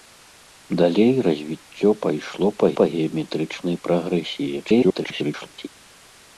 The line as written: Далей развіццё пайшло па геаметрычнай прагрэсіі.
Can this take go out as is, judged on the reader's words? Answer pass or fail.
fail